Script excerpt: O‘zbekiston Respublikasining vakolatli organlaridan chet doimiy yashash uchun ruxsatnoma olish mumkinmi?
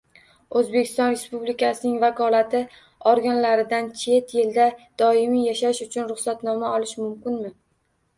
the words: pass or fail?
fail